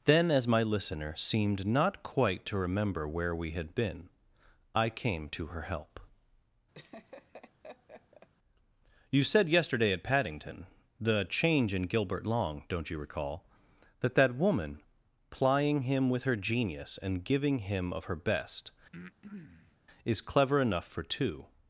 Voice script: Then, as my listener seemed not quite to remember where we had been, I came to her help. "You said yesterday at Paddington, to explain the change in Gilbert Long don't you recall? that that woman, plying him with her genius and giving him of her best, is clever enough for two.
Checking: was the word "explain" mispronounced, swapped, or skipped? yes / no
yes